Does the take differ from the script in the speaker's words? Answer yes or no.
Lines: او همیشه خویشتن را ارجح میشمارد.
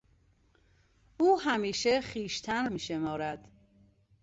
yes